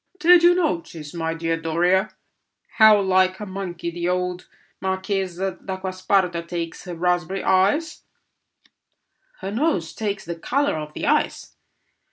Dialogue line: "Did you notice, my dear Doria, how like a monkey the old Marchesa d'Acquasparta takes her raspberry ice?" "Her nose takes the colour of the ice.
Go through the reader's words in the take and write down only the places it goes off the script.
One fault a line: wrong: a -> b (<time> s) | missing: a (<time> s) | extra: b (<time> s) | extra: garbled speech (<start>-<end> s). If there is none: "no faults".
no faults